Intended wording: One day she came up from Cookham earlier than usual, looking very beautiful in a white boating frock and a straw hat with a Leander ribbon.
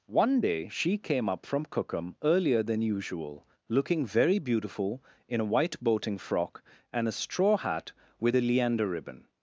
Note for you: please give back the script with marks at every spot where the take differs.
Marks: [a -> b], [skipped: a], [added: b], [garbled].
One day she came up from Cookham earlier than usual, looking very beautiful in a white boating frock and a straw hat with a Leander ribbon.